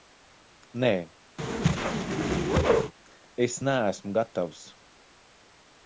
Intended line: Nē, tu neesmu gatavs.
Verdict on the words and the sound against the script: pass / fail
fail